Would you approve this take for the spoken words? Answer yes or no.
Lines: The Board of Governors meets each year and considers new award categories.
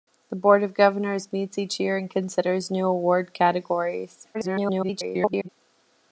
no